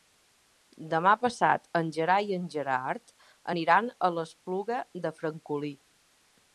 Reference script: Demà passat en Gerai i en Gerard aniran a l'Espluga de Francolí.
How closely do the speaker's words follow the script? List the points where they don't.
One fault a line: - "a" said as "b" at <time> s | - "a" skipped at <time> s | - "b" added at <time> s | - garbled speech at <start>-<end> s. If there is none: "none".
none